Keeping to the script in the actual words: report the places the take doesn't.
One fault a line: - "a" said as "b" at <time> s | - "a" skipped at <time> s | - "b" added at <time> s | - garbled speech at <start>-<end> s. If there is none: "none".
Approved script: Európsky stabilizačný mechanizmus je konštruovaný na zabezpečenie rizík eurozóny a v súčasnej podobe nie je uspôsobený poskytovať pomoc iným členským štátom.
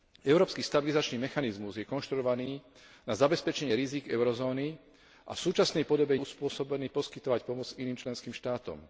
- "nie" skipped at 6.2 s